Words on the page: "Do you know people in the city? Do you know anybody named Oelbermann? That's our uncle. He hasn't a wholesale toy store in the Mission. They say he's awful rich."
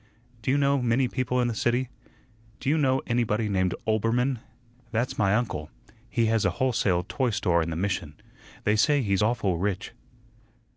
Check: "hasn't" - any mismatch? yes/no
yes